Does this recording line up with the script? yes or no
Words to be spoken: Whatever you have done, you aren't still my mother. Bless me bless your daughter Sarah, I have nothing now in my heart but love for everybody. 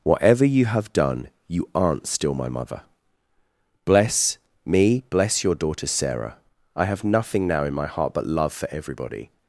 yes